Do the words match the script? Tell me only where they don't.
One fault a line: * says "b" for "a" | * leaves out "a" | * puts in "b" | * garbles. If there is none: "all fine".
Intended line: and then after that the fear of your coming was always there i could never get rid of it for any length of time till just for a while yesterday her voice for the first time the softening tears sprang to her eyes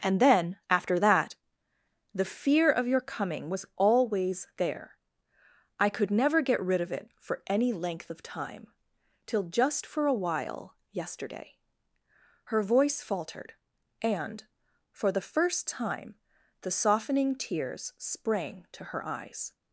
* puts in "faltered and"